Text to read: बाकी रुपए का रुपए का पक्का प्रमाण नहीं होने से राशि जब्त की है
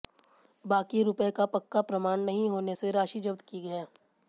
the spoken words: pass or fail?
fail